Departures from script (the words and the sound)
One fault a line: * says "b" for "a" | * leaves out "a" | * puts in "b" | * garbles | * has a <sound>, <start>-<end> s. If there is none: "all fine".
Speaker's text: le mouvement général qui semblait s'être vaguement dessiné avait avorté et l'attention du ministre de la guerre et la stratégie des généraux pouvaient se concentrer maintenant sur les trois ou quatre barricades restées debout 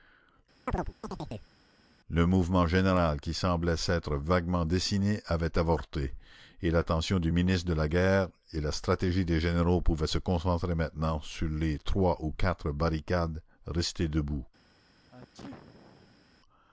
* has a chirp, 0.7-1.5 s
* has a sneeze, 15.1-16.2 s